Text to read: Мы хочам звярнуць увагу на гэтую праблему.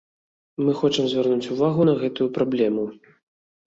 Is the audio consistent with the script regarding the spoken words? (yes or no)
yes